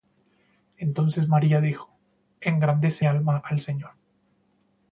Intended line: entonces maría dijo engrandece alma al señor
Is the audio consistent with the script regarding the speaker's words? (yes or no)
yes